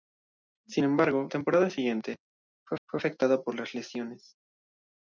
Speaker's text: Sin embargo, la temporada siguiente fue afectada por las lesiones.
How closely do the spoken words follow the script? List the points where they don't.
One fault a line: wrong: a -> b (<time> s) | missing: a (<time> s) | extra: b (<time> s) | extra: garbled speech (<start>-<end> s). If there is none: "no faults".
missing: la (1.3 s)
extra: fue (2.9 s)